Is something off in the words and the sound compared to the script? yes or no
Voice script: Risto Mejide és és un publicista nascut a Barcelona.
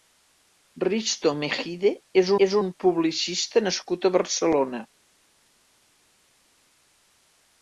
no